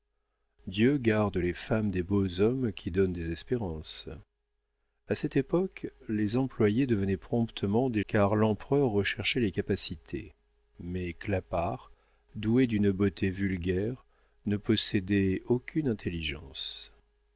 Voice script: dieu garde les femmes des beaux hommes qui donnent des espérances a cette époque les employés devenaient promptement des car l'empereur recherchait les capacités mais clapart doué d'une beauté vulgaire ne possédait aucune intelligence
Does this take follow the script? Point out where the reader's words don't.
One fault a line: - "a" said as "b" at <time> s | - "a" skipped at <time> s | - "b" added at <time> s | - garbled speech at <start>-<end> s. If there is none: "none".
none